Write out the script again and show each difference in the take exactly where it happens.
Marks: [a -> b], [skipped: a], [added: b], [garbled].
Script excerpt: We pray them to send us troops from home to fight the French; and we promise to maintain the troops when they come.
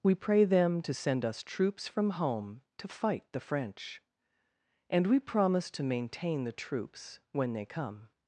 We pray them to send us troops from home to fight the French; and we promise to maintain the troops when they come.